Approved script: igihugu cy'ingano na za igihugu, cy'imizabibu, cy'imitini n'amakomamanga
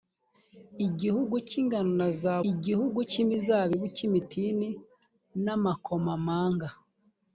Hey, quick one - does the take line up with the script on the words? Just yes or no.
yes